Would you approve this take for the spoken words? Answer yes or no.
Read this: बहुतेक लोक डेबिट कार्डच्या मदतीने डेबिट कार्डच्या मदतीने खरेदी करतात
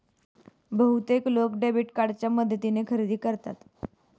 no